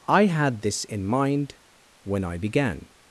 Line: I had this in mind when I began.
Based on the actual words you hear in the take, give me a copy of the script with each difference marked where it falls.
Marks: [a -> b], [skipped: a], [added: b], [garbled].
I had this in mind when I began.